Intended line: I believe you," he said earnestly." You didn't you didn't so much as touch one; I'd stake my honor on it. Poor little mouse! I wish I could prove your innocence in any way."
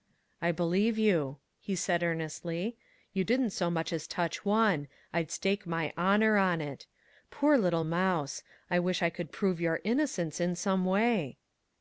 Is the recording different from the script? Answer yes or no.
yes